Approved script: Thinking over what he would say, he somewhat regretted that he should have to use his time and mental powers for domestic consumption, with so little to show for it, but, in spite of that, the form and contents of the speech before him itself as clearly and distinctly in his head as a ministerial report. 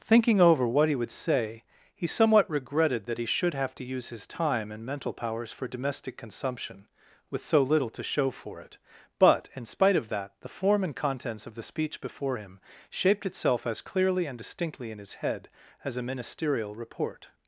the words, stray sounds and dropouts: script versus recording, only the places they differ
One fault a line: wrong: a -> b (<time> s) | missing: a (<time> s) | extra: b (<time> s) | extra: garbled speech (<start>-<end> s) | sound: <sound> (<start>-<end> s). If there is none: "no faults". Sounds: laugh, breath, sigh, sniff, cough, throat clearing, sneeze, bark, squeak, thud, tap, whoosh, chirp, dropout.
extra: shaped (12.9 s)